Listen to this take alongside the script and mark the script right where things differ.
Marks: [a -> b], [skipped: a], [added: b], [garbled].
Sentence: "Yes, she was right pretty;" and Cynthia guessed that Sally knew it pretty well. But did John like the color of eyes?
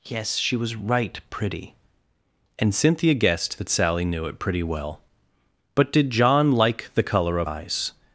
"Yes, she was right pretty;" and Cynthia guessed that Sally knew it pretty well. But did John like the color of eyes?